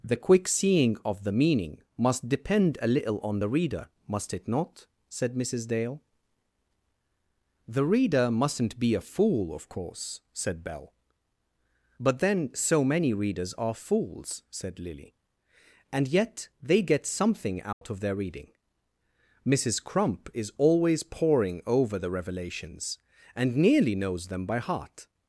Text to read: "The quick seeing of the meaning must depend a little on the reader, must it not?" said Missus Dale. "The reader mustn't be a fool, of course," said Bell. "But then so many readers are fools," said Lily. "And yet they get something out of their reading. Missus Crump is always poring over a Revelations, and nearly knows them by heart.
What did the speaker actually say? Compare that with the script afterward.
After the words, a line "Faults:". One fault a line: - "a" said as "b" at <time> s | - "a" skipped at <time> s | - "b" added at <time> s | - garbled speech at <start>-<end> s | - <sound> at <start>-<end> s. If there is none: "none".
"The quick seeing of the meaning must depend a little on the reader, must it not?" said Missus Dale. "The reader mustn't be a fool, of course," said Bell. "But then so many readers are fools," said Lily. "And yet they get something out of their reading. Missus Crump is always poring over the Revelations, and nearly knows them by heart.
Faults:
- dropout at 17.7-17.8 s
- "a" said as "the" at 22.0 s